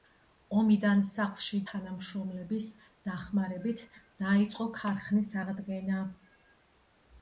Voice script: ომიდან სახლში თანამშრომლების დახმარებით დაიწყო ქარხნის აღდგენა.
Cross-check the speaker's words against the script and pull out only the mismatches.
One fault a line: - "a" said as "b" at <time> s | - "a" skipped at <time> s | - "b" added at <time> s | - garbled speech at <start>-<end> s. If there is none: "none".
none